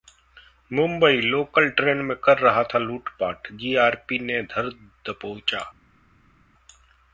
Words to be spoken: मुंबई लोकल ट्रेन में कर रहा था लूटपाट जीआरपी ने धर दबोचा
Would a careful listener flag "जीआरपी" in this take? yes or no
no